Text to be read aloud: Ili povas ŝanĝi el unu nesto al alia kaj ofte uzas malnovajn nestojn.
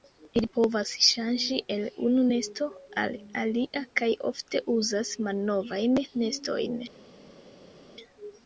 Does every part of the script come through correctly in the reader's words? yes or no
yes